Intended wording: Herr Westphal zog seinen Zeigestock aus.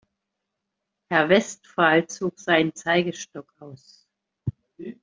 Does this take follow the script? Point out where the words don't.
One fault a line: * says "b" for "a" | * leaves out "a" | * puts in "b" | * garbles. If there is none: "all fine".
all fine